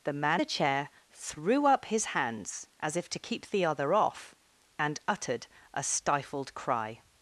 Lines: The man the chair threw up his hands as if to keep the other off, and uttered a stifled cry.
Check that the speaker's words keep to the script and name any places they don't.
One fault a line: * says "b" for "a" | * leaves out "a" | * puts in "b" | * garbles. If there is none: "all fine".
all fine